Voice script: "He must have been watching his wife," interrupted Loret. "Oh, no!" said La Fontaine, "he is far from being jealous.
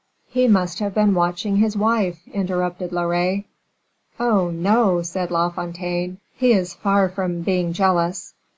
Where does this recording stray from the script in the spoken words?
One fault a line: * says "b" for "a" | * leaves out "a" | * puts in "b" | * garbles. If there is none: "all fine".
all fine